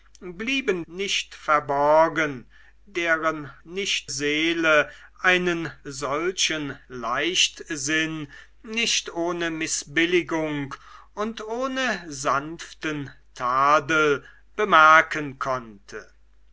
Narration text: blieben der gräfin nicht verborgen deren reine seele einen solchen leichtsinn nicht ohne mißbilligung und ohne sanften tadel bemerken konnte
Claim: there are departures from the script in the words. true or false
true